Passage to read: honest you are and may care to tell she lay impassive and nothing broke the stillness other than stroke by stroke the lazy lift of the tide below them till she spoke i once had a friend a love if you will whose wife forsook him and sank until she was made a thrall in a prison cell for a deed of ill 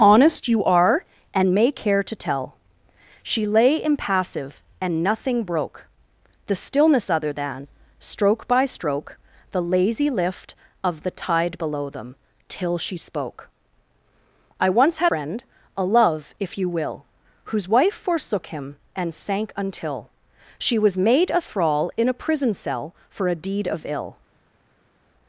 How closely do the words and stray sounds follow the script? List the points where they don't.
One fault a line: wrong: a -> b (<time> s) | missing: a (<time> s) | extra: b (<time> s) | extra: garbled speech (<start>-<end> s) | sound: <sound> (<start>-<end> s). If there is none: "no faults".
missing: a (15.1 s)